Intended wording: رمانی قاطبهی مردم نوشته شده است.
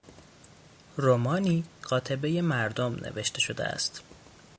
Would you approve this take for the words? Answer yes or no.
yes